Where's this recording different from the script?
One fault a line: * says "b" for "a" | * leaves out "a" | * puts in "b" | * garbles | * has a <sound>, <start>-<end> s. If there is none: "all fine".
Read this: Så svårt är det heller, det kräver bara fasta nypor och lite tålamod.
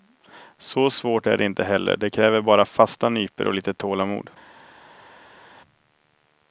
* puts in "inte"